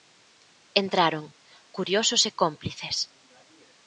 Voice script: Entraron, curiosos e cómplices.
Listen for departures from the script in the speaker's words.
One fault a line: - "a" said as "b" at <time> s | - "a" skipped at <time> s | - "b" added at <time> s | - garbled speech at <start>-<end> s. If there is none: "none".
none